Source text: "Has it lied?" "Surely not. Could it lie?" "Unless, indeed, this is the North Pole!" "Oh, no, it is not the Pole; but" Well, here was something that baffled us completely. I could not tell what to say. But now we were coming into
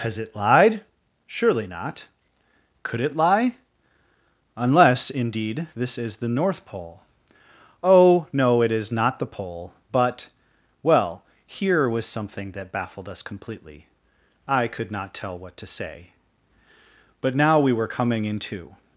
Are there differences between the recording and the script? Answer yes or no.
no